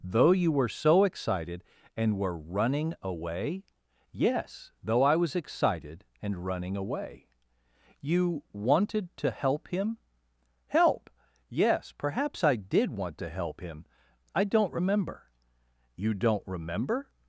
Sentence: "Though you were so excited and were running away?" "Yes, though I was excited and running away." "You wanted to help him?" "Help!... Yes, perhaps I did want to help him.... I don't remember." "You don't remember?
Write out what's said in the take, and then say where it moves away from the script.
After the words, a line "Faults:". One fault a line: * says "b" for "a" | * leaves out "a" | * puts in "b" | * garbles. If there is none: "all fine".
"Though you were so excited and were running away?" "Yes, though I was excited and running away." "You wanted to help him?" "Help!... Yes, perhaps I did want to help him.... I don't remember." "You don't remember?
Faults:
all fine